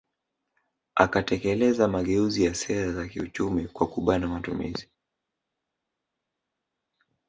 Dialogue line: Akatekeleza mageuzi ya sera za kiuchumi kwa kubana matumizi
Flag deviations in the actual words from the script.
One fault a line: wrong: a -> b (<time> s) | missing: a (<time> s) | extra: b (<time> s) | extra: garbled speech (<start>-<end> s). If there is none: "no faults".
no faults